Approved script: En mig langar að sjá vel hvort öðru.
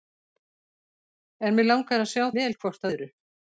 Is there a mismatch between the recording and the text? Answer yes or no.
no